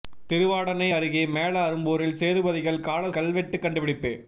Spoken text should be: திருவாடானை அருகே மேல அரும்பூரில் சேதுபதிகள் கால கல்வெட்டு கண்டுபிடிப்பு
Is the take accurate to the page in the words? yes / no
yes